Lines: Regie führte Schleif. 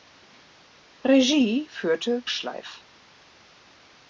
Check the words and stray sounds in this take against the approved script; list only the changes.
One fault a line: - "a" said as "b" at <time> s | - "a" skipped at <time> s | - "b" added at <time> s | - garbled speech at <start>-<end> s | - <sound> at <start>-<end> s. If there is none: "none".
none